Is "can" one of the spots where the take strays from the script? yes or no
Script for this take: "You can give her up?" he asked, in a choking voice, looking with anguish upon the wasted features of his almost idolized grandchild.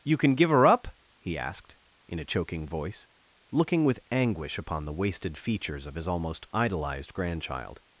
no